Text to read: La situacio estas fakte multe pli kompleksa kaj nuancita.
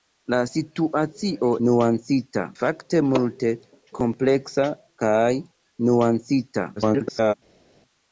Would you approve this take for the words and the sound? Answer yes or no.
no